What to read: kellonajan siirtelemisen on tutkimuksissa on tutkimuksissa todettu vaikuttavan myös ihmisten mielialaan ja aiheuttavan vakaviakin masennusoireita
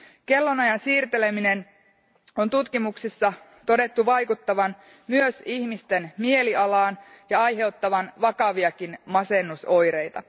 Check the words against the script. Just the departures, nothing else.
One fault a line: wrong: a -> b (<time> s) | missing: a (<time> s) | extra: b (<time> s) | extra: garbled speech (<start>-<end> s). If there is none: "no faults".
missing: on tutkimuksissa (3.3 s)